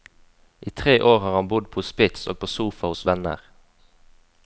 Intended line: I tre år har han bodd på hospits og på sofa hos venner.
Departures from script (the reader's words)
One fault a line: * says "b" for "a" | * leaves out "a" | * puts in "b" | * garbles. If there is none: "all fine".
all fine